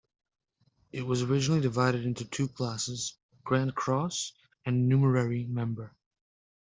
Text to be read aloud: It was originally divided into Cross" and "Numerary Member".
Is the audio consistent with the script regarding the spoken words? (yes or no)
no